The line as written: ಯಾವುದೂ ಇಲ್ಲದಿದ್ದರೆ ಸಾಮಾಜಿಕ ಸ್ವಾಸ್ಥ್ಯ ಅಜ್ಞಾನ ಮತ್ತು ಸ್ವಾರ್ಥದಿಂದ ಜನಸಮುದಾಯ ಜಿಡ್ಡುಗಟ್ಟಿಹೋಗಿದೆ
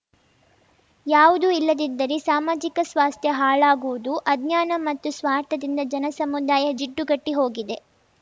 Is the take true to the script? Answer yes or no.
no